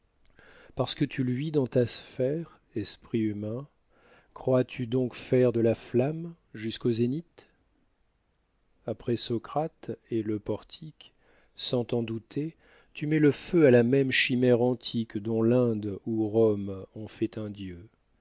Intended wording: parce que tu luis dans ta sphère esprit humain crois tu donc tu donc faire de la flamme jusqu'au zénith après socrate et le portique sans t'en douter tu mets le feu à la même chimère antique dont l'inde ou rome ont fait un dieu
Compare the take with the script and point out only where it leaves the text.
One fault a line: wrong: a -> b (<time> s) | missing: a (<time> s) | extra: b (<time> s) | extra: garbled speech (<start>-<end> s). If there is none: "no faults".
missing: tu donc (5.1 s)